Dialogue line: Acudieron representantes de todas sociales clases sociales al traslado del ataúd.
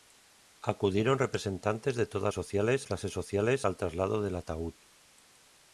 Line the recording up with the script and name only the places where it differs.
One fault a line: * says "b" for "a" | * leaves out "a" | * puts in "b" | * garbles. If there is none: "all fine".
all fine